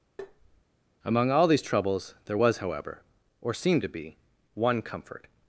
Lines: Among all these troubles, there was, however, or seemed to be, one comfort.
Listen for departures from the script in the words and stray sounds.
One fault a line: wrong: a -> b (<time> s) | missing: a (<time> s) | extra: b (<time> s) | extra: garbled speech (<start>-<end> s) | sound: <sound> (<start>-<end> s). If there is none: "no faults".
sound: tap (0.2-0.6 s)